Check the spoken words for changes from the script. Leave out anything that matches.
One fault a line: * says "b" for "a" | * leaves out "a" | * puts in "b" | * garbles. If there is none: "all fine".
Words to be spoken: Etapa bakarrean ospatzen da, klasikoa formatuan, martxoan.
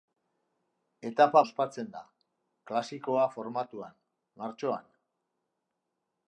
* leaves out "bakarrean"